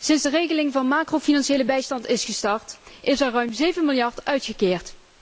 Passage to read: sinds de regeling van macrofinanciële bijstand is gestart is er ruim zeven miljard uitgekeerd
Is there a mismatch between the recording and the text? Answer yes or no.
no